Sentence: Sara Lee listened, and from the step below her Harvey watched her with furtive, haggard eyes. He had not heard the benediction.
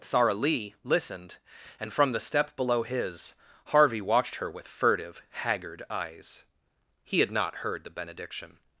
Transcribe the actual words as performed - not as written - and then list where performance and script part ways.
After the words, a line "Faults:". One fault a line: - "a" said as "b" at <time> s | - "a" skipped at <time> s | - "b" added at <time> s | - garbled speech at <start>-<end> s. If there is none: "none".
Sara Lee listened, and from the step below his Harvey watched her with furtive, haggard eyes. He had not heard the benediction.
Faults:
- "her" said as "his" at 2.8 s